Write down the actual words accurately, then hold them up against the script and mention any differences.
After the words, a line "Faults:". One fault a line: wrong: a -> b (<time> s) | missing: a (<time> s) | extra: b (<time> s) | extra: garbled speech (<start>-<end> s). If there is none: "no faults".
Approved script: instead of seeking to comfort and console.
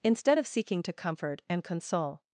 instead of seeking to comfort and console.
Faults:
no faults